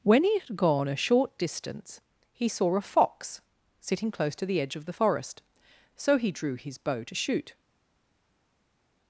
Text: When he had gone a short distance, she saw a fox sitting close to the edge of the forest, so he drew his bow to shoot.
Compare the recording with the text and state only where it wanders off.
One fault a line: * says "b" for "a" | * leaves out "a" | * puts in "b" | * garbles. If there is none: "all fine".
* says "he" for "she"